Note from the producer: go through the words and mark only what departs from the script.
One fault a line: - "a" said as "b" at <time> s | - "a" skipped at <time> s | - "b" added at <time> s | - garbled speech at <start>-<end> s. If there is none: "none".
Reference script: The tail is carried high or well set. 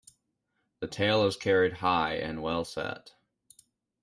- "or" said as "and" at 2.1 s